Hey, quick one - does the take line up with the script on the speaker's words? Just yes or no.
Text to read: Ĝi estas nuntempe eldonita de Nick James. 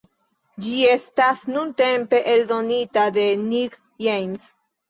yes